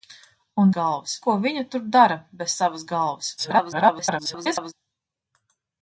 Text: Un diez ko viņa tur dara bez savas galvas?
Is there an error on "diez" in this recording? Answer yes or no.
yes